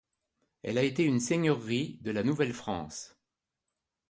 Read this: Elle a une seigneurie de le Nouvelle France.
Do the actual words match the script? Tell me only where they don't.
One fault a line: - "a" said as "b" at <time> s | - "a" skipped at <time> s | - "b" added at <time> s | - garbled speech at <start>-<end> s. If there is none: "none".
- "été" added at 0.8 s
- "le" said as "la" at 2.1 s